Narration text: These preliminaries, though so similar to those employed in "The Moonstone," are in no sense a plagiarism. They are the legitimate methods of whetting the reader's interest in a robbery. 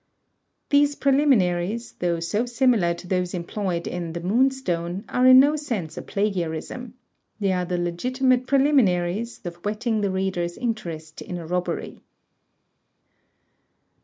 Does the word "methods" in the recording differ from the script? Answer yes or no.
yes